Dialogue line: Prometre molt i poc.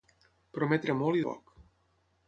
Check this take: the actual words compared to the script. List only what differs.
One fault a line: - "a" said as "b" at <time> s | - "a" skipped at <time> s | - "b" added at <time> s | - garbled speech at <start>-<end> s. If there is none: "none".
none